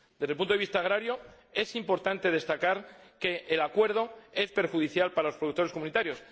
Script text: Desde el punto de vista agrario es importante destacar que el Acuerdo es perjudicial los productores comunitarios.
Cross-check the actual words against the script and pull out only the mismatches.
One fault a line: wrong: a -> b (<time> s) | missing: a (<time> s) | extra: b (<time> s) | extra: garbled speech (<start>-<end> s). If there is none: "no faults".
extra: para (5.1 s)